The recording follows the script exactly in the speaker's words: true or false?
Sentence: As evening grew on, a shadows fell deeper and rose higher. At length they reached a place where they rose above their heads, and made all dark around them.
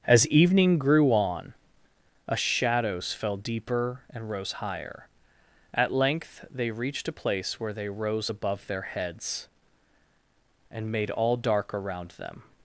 true